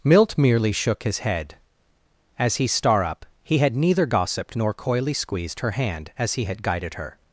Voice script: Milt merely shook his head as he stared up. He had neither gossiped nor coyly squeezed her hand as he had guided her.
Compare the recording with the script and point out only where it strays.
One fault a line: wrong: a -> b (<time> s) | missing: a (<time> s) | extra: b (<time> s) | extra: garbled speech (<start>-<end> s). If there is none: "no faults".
wrong: stared -> star (2.7 s)